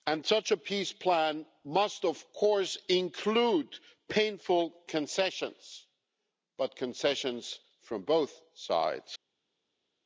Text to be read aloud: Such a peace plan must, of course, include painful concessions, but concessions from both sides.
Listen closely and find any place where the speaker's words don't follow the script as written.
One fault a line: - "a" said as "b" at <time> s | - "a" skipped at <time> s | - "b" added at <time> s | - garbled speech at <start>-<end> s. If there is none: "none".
none